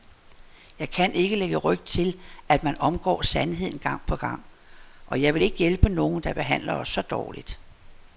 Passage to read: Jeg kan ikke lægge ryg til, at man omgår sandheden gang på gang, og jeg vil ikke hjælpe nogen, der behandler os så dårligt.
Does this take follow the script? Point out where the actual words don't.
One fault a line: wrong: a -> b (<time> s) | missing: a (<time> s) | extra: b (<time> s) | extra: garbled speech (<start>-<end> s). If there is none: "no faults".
no faults